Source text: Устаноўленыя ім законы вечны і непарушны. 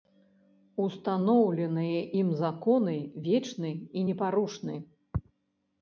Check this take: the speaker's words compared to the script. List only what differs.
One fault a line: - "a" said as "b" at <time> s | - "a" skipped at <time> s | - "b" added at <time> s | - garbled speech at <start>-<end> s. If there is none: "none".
none